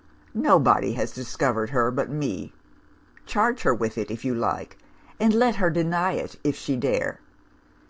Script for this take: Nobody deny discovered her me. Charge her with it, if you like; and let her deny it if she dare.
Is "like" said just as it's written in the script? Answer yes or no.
yes